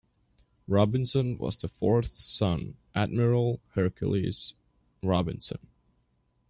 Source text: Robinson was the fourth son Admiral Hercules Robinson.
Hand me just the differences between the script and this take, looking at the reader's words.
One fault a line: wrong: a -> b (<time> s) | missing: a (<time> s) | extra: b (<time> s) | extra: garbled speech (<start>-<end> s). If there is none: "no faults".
no faults